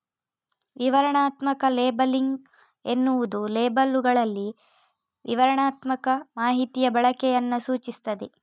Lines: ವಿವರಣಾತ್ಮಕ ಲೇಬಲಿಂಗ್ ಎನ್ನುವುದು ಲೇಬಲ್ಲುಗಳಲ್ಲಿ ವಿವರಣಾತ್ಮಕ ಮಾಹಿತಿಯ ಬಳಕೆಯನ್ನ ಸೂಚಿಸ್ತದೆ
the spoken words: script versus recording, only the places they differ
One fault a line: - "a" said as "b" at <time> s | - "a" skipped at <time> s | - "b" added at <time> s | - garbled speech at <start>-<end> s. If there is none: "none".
none